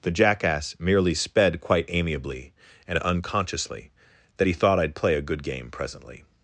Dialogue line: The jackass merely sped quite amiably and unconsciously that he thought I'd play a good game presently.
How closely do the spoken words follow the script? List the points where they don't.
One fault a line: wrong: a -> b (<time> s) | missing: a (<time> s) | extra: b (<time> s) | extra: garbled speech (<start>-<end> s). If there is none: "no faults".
no faults